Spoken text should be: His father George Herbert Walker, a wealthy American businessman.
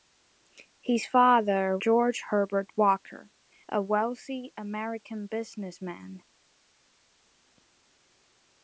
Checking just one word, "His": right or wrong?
right